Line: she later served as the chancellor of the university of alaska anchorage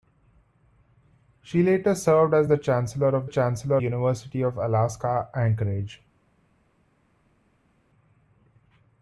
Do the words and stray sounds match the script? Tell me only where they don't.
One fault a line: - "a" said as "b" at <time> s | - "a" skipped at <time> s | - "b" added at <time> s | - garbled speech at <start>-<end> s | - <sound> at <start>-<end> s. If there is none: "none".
- "the" said as "chancellor" at 3.3 s